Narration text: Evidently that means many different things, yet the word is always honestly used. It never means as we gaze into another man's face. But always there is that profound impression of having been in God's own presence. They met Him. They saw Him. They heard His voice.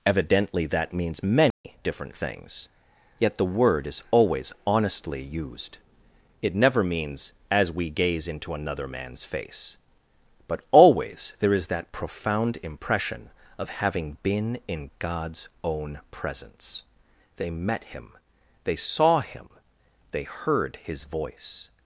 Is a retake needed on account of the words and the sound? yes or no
yes